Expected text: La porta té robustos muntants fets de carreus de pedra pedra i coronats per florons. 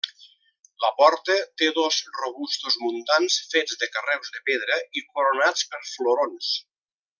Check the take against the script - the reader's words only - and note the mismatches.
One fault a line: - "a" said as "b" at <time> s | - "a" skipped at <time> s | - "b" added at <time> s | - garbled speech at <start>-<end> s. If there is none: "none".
- "dos" added at 1.8 s
- "pedra" skipped at 4.8 s